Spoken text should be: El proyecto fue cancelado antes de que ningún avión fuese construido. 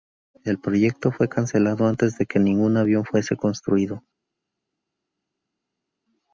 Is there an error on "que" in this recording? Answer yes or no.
no